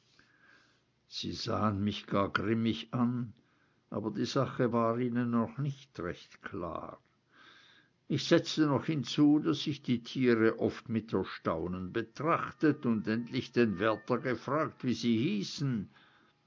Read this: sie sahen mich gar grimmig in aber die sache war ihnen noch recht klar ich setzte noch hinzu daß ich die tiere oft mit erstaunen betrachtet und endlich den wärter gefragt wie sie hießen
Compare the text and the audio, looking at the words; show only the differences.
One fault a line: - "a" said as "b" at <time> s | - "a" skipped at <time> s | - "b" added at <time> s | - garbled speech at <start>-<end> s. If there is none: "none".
- "in" said as "an" at 2.9 s
- "nicht" added at 5.6 s